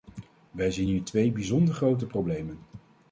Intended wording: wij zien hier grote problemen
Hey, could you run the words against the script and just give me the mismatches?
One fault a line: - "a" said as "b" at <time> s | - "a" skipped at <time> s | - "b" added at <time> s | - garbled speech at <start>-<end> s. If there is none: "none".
- "twee bijzonder" added at 1.0 s